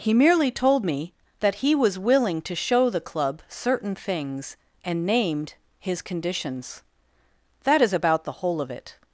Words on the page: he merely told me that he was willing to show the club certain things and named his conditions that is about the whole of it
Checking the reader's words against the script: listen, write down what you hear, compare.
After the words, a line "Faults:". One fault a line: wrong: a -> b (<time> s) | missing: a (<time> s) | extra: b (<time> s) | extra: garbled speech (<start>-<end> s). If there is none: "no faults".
he merely told me that he was willing to show the club certain things and named his conditions that is about the whole of it
Faults:
no faults